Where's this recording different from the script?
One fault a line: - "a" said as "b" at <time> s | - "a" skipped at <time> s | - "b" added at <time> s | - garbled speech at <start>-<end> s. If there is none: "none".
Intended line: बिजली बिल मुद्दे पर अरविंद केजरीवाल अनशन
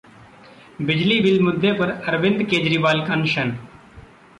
none